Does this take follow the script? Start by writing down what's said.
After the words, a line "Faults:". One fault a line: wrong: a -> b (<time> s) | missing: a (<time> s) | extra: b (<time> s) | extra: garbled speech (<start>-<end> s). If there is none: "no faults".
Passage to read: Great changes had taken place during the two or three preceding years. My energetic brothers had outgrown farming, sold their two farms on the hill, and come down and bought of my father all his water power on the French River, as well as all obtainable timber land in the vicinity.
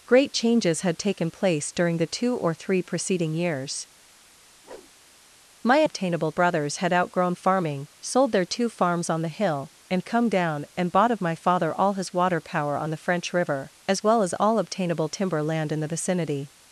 Great changes had taken place during the two or three preceding years. My obtainable brothers had outgrown farming, sold their two farms on the hill, and come down and bought of my father all his water power on the French River, as well as all obtainable timber land in the vicinity.
Faults:
wrong: energetic -> obtainable (5.8 s)